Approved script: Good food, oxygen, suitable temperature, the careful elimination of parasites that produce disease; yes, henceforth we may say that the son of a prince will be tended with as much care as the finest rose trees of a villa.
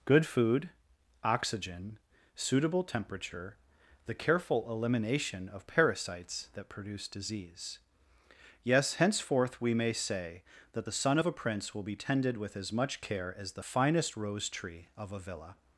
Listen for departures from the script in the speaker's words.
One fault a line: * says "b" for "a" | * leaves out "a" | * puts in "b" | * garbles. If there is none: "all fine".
* says "tree" for "trees"